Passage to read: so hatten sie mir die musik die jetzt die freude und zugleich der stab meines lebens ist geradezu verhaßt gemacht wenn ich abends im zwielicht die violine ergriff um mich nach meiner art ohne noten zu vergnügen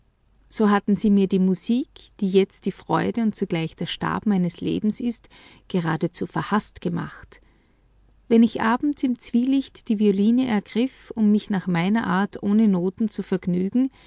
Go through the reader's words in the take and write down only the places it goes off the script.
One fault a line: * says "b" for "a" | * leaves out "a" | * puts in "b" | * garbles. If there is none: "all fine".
all fine